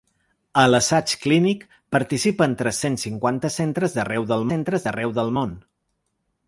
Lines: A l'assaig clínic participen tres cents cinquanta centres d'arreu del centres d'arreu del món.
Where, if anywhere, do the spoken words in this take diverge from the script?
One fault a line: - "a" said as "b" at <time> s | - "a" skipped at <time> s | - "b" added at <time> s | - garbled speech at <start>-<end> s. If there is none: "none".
none